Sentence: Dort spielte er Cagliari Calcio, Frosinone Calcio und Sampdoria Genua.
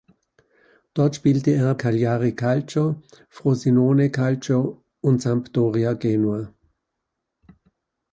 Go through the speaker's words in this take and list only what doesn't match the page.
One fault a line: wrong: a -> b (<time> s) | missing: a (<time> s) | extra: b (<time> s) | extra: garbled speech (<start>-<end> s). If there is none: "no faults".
no faults